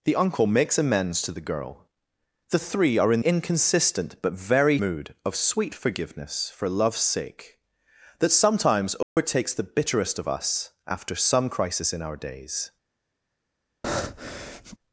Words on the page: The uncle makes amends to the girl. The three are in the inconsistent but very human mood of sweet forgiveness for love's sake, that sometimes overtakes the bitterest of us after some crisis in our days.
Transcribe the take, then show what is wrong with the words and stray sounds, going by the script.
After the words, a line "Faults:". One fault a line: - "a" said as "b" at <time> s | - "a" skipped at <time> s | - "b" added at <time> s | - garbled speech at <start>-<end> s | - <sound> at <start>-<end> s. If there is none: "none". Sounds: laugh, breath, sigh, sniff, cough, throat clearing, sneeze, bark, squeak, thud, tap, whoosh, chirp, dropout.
The uncle makes amends to the girl. The three are in inconsistent but very mood of sweet forgiveness for love's sake, that sometimes overtakes the bitterest of us after some crisis in our days.
Faults:
- "the" skipped at 3.2 s
- "human" skipped at 4.8 s
- dropout at 9.0-9.2 s
- breath at 13.8-14.8 s